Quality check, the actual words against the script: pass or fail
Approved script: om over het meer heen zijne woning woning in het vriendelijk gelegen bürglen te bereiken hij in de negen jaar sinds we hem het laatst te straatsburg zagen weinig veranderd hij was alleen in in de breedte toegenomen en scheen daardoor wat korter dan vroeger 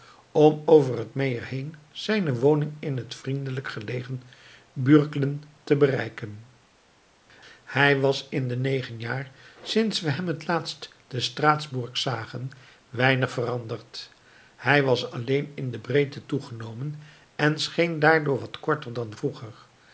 fail